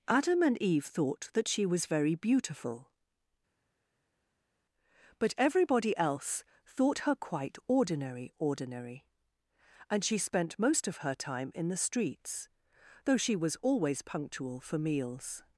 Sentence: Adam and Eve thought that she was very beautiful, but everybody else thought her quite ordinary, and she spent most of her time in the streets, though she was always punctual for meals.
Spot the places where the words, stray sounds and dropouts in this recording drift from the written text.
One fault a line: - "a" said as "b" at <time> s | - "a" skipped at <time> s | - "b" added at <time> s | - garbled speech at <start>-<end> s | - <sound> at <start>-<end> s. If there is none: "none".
- "ordinary" added at 8.4 s